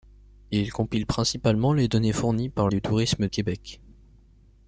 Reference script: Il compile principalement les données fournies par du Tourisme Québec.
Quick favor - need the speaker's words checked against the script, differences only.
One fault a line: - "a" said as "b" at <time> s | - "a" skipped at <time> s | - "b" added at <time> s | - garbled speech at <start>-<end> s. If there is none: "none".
none